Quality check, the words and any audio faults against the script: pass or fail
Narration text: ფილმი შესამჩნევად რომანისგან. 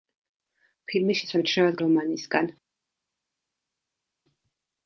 pass